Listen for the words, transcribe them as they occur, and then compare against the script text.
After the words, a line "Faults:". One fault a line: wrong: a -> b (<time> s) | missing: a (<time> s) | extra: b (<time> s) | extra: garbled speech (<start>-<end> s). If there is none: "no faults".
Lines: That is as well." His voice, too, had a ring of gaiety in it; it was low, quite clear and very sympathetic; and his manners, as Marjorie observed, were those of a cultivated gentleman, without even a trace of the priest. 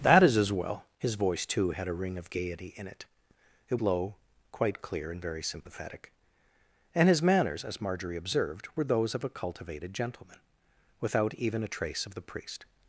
That is as well." His voice, too, had a ring of gaiety in it; it low, quite clear and very sympathetic; and his manners, as Marjorie observed, were those of a cultivated gentleman, without even a trace of the priest.
Faults:
missing: was (3.8 s)